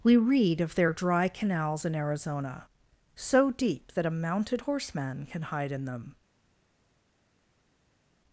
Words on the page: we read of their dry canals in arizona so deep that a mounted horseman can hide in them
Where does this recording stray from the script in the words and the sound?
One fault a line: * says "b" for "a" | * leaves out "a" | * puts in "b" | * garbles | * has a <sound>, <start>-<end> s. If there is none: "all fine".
all fine